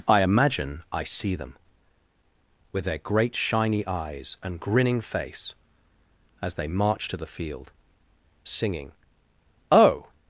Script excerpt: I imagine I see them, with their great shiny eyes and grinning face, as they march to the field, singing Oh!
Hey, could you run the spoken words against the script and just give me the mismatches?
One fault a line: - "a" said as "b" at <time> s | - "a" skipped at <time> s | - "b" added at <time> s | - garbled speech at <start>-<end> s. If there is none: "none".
none